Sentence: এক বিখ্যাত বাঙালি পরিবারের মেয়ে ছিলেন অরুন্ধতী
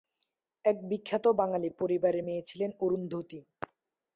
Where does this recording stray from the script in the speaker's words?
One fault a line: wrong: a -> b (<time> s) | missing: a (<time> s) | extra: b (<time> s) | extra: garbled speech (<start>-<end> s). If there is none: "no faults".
no faults